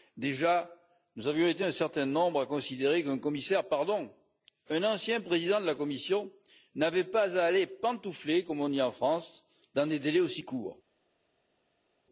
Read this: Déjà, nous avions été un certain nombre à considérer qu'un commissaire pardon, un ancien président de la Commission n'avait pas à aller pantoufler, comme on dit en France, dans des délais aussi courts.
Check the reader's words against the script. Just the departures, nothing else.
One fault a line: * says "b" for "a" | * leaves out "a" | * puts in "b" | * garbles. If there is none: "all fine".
all fine